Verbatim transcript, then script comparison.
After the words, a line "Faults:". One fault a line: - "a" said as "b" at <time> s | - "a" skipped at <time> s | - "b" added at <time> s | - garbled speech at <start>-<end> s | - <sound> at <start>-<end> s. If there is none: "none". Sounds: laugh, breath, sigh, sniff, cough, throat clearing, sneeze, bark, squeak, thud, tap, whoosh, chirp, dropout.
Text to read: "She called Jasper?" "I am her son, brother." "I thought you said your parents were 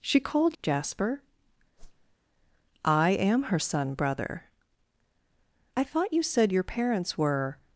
"She called Jasper?" "I am her son, brother." "I thought you said your parents were
Faults:
- whoosh at 1.8-2.2 s